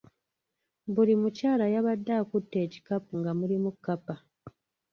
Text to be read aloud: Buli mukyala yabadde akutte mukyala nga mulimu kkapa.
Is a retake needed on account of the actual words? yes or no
yes